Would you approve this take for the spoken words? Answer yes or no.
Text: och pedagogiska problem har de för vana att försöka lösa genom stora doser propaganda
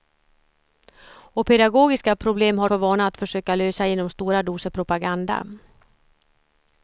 no